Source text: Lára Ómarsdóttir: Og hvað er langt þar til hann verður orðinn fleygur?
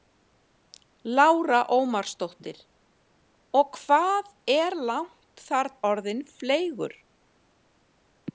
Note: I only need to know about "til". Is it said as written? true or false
false